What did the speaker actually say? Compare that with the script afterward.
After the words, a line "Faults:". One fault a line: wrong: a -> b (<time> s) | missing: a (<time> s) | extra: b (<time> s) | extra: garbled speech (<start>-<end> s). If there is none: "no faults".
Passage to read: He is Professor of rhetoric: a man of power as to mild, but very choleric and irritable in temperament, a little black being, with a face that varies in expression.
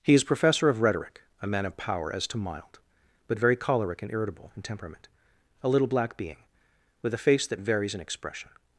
He is Professor of rhetoric: a man of power as to mild, but very choleric and irritable in temperament, a little black being, with a face that varies in expression.
Faults:
no faults